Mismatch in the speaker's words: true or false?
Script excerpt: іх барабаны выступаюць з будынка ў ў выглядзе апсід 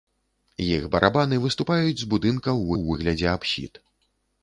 false